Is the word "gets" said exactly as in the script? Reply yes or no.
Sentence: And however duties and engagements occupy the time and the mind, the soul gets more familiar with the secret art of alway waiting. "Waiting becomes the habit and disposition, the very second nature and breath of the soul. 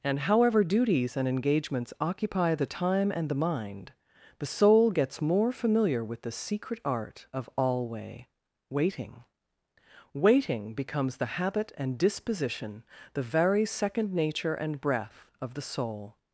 yes